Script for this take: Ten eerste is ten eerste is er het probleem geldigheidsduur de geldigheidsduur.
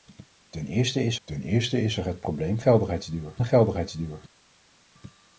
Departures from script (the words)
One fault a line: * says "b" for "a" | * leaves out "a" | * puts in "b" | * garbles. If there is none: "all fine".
all fine